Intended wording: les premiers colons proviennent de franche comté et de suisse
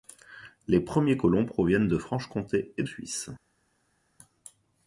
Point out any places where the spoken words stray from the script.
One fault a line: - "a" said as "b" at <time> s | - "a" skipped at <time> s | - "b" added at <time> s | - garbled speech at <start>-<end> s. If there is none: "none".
- "de" skipped at 2.8 s